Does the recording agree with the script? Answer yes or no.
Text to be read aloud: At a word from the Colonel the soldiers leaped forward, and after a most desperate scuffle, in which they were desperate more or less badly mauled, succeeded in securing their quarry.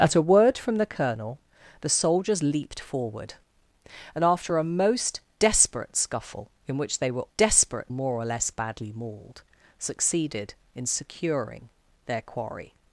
yes